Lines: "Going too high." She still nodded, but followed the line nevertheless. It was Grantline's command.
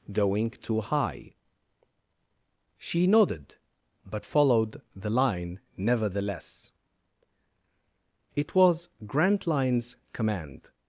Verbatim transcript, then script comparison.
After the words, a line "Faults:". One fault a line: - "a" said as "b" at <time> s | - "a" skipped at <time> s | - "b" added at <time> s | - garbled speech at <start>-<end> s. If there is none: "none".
"Going too high." She nodded, but followed the line nevertheless. It was Grantline's command.
Faults:
- "still" skipped at 3.0 s